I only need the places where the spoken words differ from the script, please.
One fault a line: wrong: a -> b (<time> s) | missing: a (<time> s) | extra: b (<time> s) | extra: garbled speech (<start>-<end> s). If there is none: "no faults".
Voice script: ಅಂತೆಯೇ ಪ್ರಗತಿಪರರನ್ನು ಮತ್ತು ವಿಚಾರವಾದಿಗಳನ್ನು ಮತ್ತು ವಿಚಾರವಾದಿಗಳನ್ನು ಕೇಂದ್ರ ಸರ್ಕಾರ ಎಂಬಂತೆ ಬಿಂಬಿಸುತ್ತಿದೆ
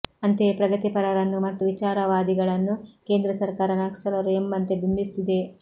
missing: ಮತ್ತು ವಿಚಾರವಾದಿಗಳನ್ನು (2.7 s)
extra: ನಕ್ಸಲರು (3.8 s)